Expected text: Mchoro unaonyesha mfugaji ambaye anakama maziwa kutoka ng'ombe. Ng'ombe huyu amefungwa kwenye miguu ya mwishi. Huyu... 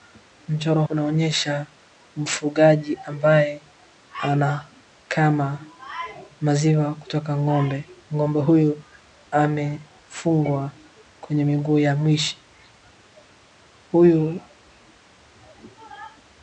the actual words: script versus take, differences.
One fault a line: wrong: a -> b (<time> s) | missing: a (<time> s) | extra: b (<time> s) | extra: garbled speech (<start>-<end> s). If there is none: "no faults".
no faults